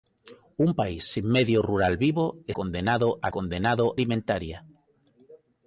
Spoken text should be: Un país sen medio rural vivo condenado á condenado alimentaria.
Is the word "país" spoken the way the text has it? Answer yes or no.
yes